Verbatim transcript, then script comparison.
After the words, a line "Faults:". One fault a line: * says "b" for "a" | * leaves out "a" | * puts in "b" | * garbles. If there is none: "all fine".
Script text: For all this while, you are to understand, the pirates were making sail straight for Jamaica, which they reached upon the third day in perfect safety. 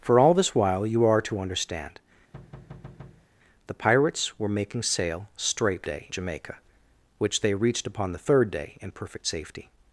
For all this while, you are to understand, the pirates were making sail straight day Jamaica, which they reached upon the third day in perfect safety.
Faults:
* says "day" for "for"